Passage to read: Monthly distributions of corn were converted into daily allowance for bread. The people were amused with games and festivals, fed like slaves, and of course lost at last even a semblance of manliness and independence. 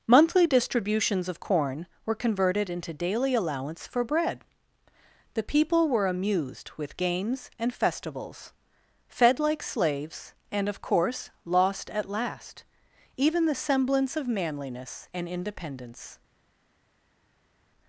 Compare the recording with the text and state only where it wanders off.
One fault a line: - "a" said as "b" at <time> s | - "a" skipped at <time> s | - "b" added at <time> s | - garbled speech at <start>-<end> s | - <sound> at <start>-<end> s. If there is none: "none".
- "a" said as "the" at 13.4 s